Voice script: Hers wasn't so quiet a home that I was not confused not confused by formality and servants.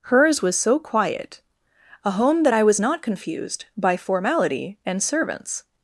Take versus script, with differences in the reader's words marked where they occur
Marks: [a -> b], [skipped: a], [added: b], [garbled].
Hers [wasn't -> was] so quiet a home that I was not confused [skipped: not confused] by formality and servants.